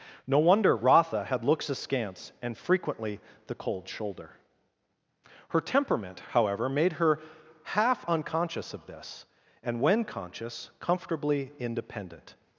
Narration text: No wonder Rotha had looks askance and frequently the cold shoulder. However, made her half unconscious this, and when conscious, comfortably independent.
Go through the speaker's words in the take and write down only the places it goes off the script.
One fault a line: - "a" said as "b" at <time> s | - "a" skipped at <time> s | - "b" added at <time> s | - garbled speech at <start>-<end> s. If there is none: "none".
- "Her temperament" added at 5.5 s
- "of" added at 8.7 s